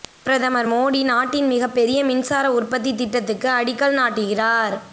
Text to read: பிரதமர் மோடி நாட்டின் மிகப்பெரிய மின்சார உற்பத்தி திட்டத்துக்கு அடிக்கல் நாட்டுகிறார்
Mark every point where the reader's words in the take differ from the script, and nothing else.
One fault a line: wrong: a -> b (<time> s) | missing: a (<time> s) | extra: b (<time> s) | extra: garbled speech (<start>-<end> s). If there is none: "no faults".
no faults